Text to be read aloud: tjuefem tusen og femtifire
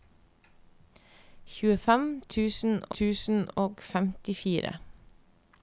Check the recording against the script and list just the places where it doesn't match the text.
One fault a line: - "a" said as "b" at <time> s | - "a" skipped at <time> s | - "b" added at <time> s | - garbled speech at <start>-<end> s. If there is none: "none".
- "tusen" added at 3.0 s